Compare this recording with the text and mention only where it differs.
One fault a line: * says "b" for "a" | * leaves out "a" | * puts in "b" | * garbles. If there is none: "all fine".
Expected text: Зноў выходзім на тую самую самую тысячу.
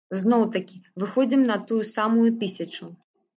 * puts in "такі"
* leaves out "самую"